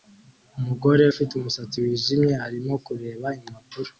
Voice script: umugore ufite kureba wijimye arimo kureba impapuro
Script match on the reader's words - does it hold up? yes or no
no